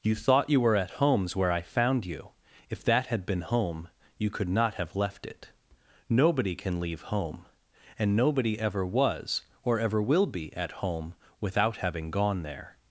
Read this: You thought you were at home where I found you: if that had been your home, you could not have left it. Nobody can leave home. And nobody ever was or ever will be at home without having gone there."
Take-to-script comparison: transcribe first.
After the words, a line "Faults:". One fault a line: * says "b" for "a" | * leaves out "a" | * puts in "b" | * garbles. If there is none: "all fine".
You thought you were at homes where I found you: if that had been home, you could not have left it. Nobody can leave home. And nobody ever was or ever will be at home without having gone there."
Faults:
* says "homes" for "home"
* leaves out "your"